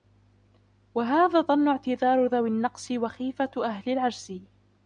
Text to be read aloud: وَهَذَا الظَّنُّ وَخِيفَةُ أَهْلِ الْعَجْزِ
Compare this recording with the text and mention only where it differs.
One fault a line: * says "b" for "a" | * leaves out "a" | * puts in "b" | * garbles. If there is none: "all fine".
* puts in "اعْتِذَارُ ذَوِي النَّقْصِ"